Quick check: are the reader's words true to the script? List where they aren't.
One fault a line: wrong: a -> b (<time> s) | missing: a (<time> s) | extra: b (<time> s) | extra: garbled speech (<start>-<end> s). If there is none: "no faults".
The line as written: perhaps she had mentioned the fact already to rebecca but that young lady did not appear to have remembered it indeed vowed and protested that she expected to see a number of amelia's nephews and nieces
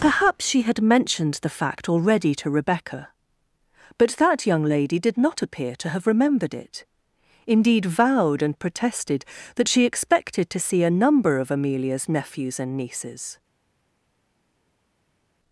no faults